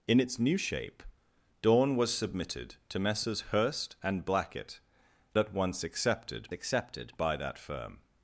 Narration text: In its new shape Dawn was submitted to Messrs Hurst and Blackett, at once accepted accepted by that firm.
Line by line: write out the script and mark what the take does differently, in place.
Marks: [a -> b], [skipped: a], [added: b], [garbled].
In its new shape Dawn was submitted to Messrs Hurst and Blackett, at once accepted accepted by that firm.